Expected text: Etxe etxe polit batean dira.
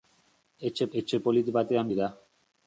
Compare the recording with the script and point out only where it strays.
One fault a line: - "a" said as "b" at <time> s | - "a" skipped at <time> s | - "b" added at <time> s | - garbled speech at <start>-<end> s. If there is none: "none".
none